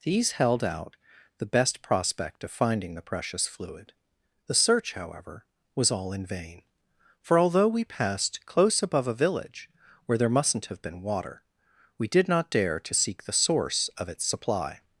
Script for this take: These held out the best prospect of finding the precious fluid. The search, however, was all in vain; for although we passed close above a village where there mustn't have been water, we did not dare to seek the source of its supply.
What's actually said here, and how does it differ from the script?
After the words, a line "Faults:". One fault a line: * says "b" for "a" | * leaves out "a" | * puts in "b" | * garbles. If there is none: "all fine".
These held out the best prospect of finding the precious fluid. The search, however, was all in vain; for although we passed close above a village where there mustn't have been water, we did not dare to seek the source of its supply.
Faults:
all fine